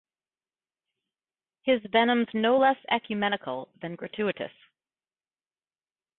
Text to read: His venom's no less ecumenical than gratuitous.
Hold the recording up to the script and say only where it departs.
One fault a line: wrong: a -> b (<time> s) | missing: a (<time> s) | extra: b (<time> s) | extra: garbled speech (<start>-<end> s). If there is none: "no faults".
no faults